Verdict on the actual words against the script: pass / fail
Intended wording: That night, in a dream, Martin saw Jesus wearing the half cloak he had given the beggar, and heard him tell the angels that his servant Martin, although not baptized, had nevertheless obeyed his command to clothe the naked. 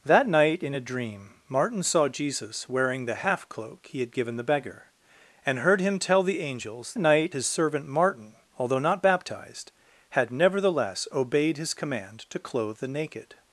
fail